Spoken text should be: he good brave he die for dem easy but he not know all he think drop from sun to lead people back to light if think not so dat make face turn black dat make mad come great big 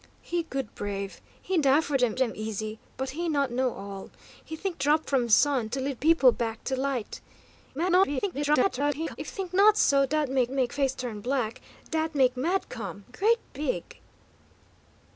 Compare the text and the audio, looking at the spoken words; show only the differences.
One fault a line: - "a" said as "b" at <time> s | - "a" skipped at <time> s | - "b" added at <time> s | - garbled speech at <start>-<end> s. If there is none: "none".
- "dem" added at 2.1 s
- garbled speech at 7.7-9.2 s
- "make" added at 10.5 s